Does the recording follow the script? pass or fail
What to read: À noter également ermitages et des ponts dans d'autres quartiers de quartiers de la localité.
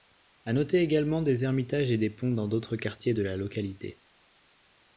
fail